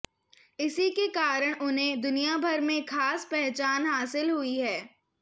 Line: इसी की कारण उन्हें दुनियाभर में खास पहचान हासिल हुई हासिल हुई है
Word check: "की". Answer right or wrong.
wrong